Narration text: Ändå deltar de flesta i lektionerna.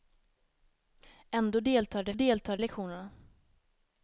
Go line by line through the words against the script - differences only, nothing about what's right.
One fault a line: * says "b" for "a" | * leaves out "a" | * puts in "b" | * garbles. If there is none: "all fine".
* says "deltar" for "flesta"